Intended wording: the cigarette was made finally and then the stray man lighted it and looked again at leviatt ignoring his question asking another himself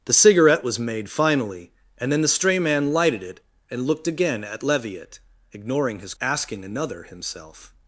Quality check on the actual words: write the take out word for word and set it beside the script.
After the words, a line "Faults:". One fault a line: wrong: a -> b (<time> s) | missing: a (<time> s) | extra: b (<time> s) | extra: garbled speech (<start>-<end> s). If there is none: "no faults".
the cigarette was made finally and then the stray man lighted it and looked again at leviatt ignoring his asking another himself
Faults:
missing: question (6.2 s)